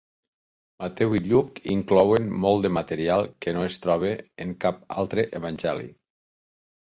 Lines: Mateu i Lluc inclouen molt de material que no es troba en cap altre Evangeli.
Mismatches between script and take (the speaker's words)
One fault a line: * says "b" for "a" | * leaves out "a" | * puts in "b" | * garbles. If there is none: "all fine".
all fine